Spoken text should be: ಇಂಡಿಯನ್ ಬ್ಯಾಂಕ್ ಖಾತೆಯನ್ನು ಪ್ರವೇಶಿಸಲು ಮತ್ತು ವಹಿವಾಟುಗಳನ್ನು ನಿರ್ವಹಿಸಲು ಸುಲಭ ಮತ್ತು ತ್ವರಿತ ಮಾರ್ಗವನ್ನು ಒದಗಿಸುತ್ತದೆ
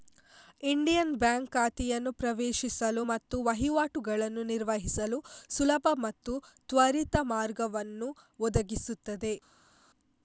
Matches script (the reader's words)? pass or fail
pass